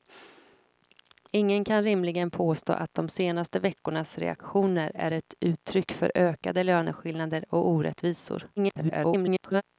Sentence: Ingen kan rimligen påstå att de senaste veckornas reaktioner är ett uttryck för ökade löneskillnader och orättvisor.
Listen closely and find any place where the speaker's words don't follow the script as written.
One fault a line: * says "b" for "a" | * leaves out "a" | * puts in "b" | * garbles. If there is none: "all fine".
* garbles